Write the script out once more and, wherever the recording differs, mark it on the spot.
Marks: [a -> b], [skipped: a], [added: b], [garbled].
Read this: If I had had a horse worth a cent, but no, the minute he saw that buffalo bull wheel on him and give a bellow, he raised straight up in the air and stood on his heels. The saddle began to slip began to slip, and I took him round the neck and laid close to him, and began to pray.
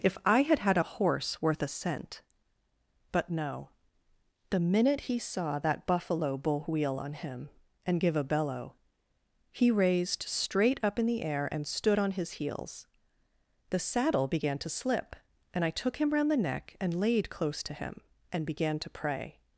If I had had a horse worth a cent, but no, the minute he saw that buffalo bull wheel on him and give a bellow, he raised straight up in the air and stood on his heels. The saddle began to slip [skipped: began to slip,] and I took him round the neck and laid close to him, and began to pray.